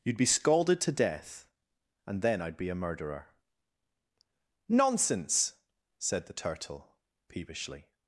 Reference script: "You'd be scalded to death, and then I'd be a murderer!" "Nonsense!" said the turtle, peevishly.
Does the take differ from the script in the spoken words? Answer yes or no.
no